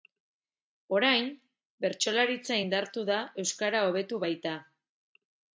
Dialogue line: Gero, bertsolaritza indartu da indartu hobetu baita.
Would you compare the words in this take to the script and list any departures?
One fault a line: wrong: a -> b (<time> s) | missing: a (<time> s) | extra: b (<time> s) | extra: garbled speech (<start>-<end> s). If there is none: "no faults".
wrong: Gero -> Orain (1.0 s)
wrong: indartu -> euskara (3.5 s)